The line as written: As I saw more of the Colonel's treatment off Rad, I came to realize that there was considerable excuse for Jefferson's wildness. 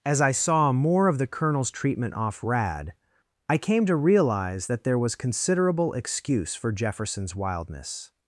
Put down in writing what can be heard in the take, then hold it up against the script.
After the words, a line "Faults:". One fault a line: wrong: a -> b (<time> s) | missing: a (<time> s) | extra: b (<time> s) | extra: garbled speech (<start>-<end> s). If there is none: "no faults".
As I saw more of the Colonel's treatment off Rad, I came to realize that there was considerable excuse for Jefferson's wildness.
Faults:
no faults